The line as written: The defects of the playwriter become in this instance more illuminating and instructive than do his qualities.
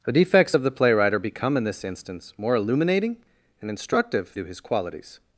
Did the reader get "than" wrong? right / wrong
wrong